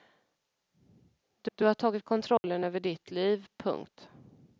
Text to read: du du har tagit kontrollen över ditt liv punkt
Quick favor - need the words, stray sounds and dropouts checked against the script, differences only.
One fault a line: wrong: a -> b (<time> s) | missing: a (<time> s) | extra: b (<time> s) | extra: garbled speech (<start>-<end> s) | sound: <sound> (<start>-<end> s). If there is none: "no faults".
sound: dropout (2.4-2.4 s)